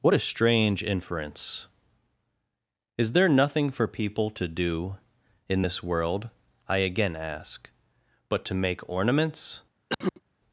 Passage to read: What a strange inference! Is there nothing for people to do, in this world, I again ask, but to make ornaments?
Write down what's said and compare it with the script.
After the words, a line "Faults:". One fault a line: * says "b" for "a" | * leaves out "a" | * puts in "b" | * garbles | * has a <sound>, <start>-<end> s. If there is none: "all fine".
What a strange inference! Is there nothing for people to do, in this world, I again ask, but to make ornaments?
Faults:
* has a cough, 9.9-10.2 s